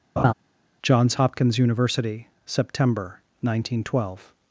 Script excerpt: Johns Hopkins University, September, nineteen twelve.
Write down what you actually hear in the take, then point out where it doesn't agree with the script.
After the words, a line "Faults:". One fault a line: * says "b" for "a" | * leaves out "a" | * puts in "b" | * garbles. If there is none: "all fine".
Johns Hopkins University, September, nineteen twelve.
Faults:
all fine